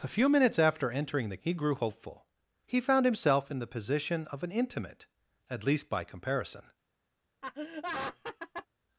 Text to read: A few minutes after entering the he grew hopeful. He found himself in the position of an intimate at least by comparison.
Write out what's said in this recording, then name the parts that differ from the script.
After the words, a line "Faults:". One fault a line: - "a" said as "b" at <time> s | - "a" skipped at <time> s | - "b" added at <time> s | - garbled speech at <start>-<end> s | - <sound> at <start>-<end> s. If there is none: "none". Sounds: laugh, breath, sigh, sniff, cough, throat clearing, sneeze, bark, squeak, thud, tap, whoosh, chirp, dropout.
A few minutes after entering the he grew hopeful. He found himself in the position of an intimate at least by comparison.
Faults:
- laugh at 7.4-8.7 s